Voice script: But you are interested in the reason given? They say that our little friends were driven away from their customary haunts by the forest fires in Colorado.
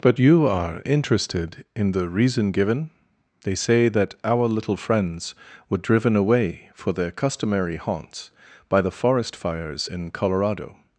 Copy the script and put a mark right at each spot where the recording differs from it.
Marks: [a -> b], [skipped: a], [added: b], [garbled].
But you are interested in the reason given? They say that our little friends were driven away [from -> for] their customary haunts by the forest fires in Colorado.